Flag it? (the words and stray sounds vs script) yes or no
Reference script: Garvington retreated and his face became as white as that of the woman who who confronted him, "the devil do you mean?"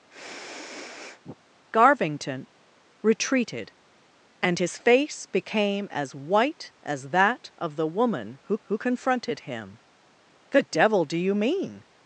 yes